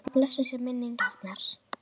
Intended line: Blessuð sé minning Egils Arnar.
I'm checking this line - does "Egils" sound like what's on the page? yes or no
no